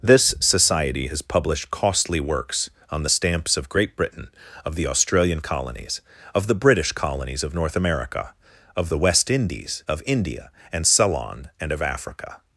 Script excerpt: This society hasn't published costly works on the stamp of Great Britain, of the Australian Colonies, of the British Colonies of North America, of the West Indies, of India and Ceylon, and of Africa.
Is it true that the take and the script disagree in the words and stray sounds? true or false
true